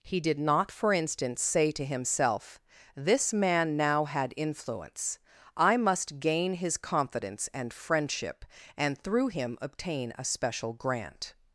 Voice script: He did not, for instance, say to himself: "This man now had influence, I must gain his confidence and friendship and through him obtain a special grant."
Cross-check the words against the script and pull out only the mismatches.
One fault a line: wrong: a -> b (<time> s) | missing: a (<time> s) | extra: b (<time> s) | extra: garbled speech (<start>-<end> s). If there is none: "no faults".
no faults